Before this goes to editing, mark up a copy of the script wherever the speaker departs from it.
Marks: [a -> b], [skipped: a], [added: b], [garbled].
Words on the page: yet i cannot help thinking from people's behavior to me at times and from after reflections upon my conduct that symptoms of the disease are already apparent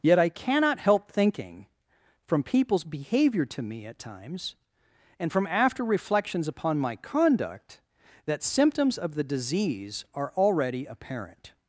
yet i cannot help thinking from people's behavior to me at times and from after reflections upon my conduct that symptoms of the disease are already apparent